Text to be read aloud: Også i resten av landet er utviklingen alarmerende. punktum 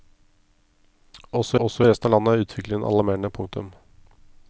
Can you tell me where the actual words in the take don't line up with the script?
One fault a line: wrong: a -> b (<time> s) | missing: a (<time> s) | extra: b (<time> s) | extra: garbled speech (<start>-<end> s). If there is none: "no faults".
extra: også (1.6 s)